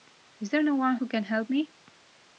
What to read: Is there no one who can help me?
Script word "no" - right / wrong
right